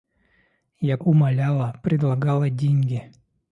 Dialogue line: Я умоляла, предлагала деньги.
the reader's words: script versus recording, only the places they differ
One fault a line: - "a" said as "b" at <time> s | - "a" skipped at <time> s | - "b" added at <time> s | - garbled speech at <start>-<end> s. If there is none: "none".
none